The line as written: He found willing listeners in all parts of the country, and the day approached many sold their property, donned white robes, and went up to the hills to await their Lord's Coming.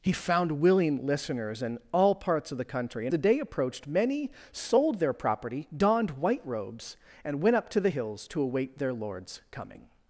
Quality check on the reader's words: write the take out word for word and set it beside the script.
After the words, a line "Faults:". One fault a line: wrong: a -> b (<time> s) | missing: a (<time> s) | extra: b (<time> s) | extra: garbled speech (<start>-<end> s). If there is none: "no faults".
He found willing listeners in all parts of the country, and the day approached many sold their property, donned white robes, and went up to the hills to await their Lord's Coming.
Faults:
no faults